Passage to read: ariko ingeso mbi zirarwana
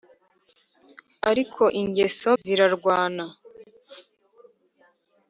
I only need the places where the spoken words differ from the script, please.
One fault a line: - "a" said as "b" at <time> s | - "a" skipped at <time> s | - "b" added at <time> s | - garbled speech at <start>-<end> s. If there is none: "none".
- "mbi" skipped at 2.3 s